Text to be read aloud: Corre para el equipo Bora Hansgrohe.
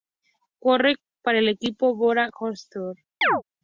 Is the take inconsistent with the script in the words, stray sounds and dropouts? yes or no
yes